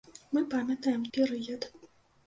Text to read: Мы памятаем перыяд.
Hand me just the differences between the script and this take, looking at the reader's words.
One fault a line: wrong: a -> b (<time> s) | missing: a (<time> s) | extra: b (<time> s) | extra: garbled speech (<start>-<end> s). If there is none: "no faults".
no faults